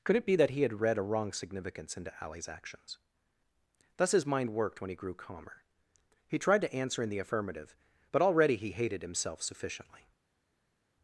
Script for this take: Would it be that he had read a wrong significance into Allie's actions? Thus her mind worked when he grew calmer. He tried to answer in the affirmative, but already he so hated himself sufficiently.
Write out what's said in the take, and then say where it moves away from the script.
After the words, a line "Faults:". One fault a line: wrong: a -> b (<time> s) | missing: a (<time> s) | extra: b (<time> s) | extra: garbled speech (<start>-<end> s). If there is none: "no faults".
Could it be that he had read a wrong significance into Allie's actions? Thus his mind worked when he grew calmer. He tried to answer in the affirmative, but already he hated himself sufficiently.
Faults:
wrong: Would -> Could (0.0 s)
wrong: her -> his (4.1 s)
missing: so (8.7 s)